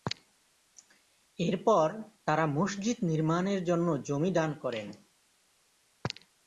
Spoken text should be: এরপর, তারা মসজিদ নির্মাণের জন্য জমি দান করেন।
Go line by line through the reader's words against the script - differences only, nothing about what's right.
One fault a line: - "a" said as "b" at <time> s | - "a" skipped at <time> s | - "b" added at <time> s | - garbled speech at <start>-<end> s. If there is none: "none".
none